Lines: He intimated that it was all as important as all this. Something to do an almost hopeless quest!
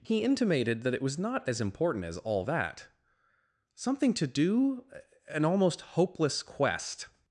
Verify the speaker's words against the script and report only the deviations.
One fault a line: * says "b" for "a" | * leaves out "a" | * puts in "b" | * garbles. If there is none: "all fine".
* says "not" for "all"
* says "that" for "this"